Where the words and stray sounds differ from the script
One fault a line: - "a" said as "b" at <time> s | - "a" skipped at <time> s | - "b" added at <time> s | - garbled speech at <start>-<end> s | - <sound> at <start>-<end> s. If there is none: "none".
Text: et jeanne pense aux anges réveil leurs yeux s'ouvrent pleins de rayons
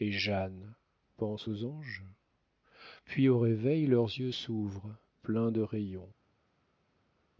- "puis au" added at 3.0 s